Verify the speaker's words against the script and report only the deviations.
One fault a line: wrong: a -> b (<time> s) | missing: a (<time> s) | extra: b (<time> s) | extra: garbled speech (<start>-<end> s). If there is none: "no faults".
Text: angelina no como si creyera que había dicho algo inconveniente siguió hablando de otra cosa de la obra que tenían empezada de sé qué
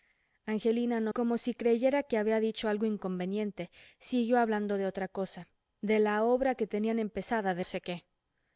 no faults